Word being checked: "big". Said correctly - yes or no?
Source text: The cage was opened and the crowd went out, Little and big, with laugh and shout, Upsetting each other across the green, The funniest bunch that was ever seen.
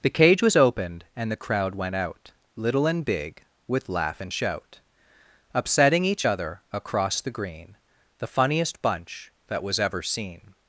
yes